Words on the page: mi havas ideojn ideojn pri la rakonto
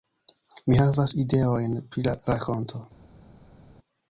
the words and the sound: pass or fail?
fail